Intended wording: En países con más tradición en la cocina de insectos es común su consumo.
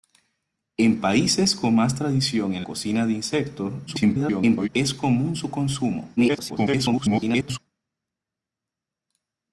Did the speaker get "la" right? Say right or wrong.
wrong